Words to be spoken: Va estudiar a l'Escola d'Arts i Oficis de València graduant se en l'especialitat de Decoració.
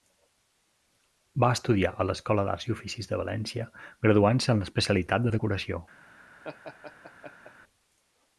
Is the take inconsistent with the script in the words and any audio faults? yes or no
yes